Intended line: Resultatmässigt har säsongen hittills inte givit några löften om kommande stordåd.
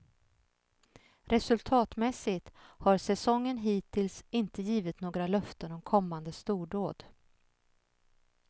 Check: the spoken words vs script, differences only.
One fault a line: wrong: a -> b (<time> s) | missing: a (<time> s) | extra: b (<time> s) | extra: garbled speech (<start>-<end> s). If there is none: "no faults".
no faults